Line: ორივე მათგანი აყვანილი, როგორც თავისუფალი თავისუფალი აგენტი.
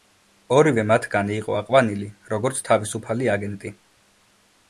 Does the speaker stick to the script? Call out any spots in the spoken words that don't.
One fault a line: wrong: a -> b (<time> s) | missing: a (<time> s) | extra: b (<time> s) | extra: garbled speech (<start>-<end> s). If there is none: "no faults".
extra: იყო (1.4 s)
missing: თავისუფალი (3.3 s)